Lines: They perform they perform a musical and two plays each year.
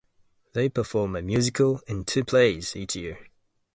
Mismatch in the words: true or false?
true